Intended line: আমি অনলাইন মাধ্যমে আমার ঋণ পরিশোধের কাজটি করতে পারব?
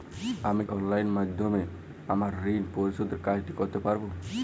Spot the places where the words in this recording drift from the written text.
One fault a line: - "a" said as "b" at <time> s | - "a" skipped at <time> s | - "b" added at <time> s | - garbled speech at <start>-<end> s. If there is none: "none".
none